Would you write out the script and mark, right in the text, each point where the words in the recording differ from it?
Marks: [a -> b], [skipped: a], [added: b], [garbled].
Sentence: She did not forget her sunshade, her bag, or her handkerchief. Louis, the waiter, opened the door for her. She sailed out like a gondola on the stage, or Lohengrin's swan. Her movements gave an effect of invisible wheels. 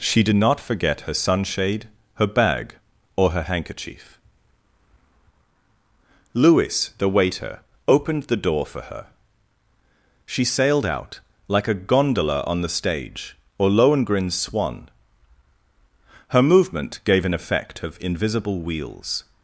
She did not forget her sunshade, her bag, or her handkerchief. Louis, the waiter, opened the door for her. She sailed out like a gondola on the stage, or Lohengrin's swan. Her [movements -> movement] gave an effect of invisible wheels.